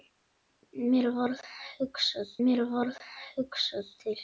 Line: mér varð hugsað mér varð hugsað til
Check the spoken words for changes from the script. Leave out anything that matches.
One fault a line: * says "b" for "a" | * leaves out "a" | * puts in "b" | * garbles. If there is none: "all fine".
all fine